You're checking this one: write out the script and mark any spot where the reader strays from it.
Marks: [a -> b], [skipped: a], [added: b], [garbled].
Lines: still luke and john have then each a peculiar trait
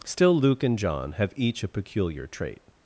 still luke and john have [skipped: then] each a peculiar trait